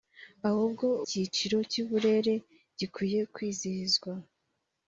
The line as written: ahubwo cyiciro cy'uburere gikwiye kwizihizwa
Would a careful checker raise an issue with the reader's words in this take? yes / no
no